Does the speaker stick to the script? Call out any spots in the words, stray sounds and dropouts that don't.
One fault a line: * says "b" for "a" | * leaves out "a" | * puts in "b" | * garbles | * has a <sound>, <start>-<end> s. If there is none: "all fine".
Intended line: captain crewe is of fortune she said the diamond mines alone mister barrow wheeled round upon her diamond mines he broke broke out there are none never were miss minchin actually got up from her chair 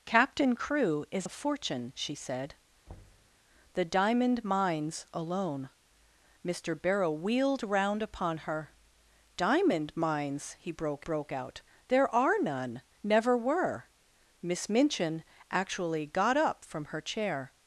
* has a thud, 2.9-3.4 s